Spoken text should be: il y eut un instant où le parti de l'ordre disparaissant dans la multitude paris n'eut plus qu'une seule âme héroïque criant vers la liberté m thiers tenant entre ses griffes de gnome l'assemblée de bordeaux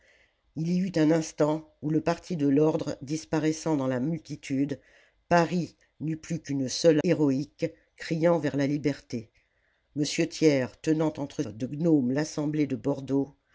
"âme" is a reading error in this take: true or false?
true